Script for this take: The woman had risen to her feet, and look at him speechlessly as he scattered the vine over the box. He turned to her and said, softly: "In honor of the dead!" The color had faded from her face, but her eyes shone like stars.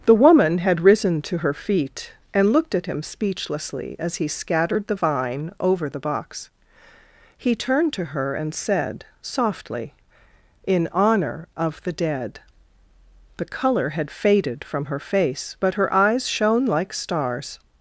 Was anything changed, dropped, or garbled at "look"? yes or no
yes